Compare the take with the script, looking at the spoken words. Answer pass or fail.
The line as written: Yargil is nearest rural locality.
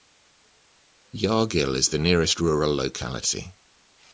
fail